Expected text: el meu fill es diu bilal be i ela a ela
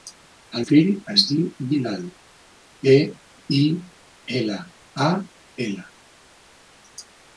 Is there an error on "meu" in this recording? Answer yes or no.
yes